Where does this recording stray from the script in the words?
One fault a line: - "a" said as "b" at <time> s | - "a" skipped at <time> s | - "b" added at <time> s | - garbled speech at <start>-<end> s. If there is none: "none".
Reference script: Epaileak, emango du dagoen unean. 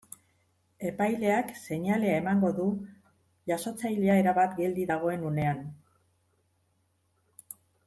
- "seinalea" added at 1.6 s
- "jasotzailea erabat geldi" added at 3.5 s